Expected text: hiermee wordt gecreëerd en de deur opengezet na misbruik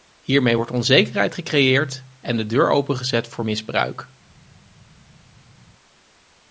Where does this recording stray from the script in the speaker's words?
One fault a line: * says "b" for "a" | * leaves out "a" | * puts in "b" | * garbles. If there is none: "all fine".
* puts in "onzekerheid"
* says "voor" for "na"